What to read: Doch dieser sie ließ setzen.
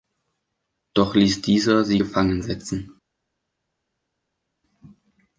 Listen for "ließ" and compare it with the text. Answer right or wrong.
wrong